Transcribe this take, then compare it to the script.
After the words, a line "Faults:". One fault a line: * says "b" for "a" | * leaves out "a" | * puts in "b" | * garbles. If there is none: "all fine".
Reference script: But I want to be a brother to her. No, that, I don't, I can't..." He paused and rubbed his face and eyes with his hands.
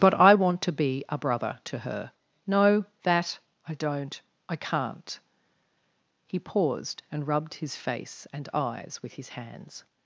But I want to be a brother to her. No, that, I don't, I can't..." He paused and rubbed his face and eyes with his hands.
Faults:
all fine